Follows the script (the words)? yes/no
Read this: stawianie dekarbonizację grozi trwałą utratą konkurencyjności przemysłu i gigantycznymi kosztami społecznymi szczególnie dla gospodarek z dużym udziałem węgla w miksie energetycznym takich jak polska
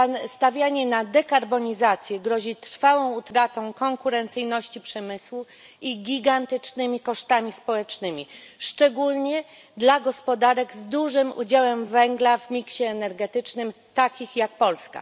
no